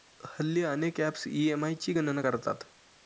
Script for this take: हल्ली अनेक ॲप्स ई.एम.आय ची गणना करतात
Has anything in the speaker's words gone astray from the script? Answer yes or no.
no